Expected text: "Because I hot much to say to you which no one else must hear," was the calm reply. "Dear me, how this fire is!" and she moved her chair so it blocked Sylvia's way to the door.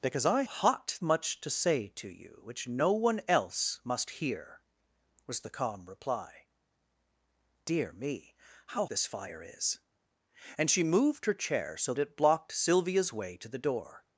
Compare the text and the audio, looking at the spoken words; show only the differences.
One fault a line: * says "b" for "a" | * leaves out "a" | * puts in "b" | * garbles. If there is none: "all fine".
all fine